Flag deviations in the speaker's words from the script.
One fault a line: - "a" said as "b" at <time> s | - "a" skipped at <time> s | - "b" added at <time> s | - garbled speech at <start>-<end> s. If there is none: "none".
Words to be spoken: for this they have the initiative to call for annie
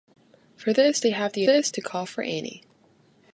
- "initiative" said as "this" at 1.4 s